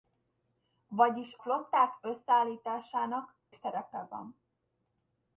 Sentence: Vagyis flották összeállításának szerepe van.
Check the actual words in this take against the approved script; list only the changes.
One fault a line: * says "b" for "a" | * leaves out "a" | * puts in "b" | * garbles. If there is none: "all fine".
all fine